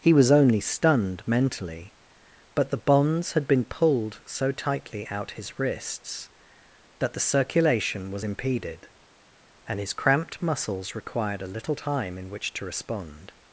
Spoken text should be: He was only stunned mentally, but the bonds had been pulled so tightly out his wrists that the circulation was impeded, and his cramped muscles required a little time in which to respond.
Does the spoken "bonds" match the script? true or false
true